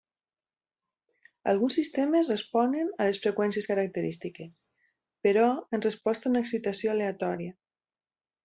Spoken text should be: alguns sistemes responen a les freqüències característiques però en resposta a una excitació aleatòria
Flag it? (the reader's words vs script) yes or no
no